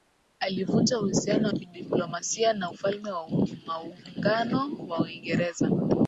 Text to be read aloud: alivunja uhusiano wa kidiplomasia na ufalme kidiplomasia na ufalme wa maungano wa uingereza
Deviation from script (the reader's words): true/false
true